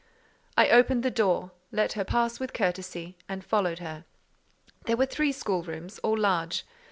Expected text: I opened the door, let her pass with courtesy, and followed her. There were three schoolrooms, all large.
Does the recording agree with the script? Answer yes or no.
yes